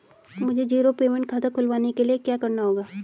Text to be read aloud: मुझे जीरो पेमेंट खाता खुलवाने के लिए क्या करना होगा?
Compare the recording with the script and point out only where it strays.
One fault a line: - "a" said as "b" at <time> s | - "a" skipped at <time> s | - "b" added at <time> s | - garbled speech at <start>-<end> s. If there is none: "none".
none